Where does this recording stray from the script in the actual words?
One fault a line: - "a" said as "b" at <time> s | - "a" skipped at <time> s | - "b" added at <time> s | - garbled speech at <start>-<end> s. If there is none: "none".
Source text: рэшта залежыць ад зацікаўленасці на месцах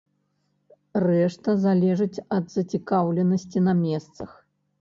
none